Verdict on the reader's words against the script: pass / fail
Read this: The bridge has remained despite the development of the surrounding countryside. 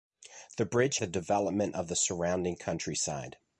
fail